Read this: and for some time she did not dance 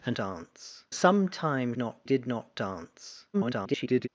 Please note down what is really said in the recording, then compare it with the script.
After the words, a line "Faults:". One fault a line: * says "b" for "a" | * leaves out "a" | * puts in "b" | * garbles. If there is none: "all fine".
and dance some time not did not dance [garbled]
Faults:
* says "dance" for "for"
* says "not" for "she"
* garbles